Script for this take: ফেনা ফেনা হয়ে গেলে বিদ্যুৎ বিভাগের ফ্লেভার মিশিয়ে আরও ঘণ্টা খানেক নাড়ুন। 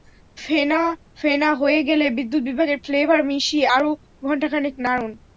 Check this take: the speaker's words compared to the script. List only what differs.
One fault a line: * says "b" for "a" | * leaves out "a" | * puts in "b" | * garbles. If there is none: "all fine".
all fine